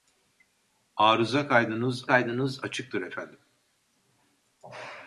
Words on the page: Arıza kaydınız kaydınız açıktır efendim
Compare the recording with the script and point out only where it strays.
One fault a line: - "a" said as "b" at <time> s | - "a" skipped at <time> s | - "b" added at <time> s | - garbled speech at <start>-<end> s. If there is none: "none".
none